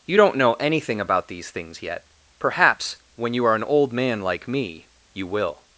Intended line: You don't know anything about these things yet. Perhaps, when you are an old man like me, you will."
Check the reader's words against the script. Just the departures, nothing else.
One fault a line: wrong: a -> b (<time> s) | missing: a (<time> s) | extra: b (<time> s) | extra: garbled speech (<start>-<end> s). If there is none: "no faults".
no faults